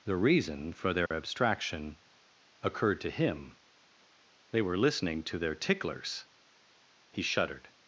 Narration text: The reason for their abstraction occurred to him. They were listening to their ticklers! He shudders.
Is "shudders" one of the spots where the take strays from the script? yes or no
yes